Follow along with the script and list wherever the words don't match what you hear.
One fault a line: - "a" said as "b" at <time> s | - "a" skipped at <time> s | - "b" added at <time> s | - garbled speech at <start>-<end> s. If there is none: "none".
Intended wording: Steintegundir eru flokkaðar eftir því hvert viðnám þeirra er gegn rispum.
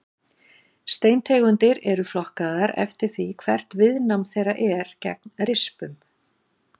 none